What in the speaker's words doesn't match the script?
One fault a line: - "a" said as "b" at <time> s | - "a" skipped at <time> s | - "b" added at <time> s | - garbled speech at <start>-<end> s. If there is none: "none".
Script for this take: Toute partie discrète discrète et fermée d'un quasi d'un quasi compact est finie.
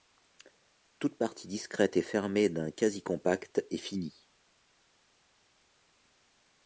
- "discrète" skipped at 1.9 s
- "d'un quasi" skipped at 3.0 s